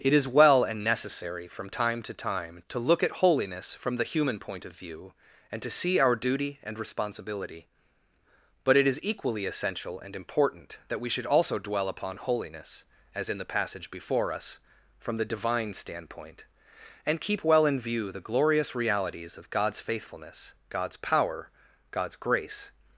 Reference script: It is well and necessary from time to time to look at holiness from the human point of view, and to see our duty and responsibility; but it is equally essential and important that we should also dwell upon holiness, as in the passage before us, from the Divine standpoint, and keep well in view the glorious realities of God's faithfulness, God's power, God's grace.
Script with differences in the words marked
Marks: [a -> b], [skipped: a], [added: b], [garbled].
It is well and necessary from time to time to look at holiness from the human point of view, and to see our duty and responsibility; but it is equally essential and important that we should also dwell upon holiness, as in the passage before us, from the Divine standpoint, and keep well in view the glorious realities of God's faithfulness, God's power, God's grace.